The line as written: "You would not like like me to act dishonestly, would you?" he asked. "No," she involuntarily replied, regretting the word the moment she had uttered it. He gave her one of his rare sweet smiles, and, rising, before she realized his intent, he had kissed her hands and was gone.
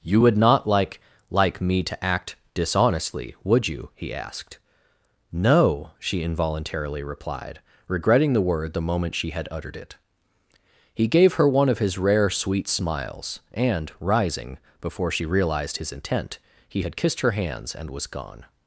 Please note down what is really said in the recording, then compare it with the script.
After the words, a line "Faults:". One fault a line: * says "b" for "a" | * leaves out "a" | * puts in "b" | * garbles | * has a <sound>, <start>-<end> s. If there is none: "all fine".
"You would not like like me to act dishonestly, would you?" he asked. "No," she involuntarily replied, regretting the word the moment she had uttered it. He gave her one of his rare sweet smiles, and, rising, before she realized his intent, he had kissed her hands and was gone.
Faults:
all fine